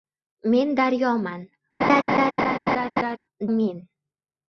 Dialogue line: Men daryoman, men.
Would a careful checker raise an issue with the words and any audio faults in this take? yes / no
yes